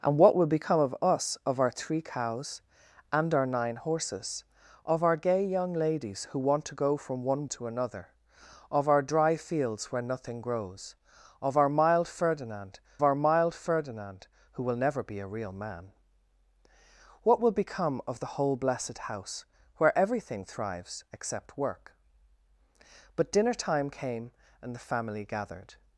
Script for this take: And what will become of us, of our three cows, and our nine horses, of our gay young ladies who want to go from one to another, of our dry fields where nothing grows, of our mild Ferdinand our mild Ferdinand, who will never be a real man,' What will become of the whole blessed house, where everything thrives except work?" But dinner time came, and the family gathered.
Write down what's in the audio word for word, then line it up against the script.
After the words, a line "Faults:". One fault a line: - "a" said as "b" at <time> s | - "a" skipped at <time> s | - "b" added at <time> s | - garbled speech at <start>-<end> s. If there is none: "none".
And what will become of us, of our three cows, and our nine horses, of our gay young ladies who want to go from one to another, of our dry fields where nothing grows, of our mild Ferdinand our mild Ferdinand, who will never be a real man,' What will become of the whole blessed house, where everything thrives except work?" But dinner time came, and the family gathered.
Faults:
none